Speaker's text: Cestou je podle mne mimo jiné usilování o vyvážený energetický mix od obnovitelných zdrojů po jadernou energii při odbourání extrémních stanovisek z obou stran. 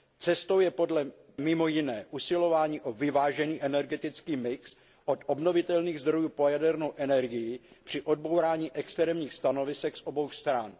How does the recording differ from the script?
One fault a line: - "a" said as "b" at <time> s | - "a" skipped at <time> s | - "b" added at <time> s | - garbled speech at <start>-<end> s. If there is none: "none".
- "mne" skipped at 1.1 s